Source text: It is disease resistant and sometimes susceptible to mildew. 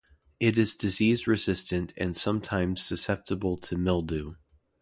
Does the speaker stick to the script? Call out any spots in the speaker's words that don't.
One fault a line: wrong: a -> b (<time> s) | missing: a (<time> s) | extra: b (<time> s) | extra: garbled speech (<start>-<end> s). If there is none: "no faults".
no faults